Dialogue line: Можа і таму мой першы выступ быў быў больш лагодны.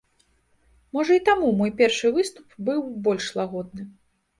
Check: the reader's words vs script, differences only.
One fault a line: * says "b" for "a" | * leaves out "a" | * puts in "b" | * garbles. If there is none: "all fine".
* leaves out "быў"